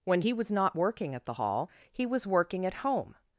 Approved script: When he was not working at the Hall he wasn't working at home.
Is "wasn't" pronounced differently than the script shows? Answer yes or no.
yes